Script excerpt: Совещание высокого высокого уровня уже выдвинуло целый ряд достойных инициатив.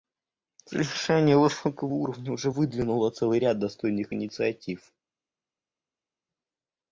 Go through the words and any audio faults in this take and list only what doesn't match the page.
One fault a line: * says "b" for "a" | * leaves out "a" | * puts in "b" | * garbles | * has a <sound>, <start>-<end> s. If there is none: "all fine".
* leaves out "высокого"